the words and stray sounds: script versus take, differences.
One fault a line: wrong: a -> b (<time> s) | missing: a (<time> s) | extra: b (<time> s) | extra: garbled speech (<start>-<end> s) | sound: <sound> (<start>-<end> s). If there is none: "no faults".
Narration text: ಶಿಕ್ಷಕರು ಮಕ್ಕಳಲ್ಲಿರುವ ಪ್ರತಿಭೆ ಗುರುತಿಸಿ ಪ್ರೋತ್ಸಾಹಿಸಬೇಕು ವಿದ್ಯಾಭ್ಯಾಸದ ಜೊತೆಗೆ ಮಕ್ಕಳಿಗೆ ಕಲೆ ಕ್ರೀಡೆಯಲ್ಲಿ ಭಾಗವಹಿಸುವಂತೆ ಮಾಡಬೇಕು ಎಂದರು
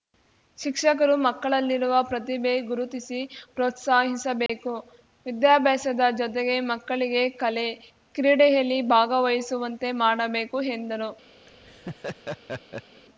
sound: dropout (4.5-4.5 s)
sound: laugh (11.5-13.0 s)